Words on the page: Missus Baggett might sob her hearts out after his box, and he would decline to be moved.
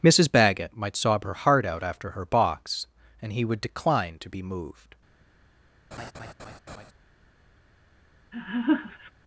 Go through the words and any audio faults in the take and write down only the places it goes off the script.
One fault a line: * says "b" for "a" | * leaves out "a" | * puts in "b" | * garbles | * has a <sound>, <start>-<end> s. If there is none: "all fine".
* says "heart" for "hearts"
* says "her" for "his"
* has a laugh, 5.9-6.9 s
* has a laugh, 8.3-9.1 s